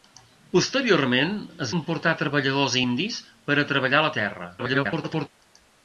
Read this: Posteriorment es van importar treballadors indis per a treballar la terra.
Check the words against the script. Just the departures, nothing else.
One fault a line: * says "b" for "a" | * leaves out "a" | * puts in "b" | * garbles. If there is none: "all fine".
* leaves out "van"
* garbles